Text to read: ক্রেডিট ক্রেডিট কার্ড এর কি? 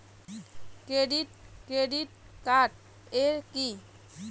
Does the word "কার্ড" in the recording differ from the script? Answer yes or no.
no